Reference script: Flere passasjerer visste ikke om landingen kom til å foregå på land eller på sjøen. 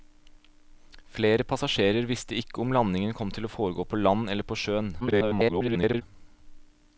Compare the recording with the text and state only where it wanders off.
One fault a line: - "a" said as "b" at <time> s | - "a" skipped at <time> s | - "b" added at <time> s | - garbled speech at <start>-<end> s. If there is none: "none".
- garbled speech at 5.0-6.0 s